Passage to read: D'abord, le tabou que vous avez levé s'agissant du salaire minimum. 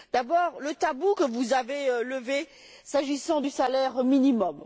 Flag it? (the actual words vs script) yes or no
no